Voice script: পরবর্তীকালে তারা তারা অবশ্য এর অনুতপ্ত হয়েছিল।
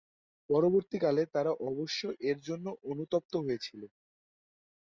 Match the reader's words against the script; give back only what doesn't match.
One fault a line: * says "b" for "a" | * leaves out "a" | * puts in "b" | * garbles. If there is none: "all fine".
* leaves out "তারা"
* puts in "জন্য"